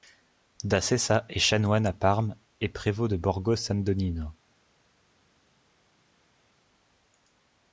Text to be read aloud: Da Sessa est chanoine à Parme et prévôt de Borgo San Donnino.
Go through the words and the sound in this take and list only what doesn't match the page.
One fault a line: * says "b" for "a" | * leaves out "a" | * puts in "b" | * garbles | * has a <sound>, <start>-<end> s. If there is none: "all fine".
all fine